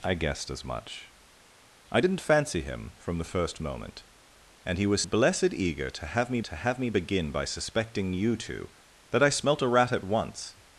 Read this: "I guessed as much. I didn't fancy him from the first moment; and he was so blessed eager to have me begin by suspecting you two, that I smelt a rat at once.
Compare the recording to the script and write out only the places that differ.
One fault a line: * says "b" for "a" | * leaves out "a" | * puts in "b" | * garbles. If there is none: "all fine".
* leaves out "so"
* puts in "to have me"